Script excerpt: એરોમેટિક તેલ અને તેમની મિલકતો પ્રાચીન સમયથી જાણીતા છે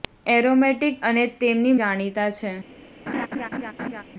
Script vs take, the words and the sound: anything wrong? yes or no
yes